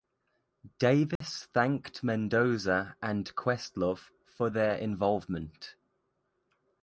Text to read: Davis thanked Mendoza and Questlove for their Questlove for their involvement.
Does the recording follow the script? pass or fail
fail